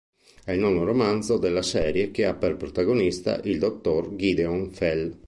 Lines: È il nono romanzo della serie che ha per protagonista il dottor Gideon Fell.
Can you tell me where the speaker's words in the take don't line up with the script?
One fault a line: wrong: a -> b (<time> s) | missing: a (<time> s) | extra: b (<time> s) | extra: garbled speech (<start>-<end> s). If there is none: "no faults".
no faults